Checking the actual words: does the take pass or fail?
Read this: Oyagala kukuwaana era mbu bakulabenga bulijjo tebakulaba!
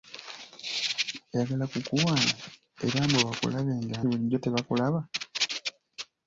pass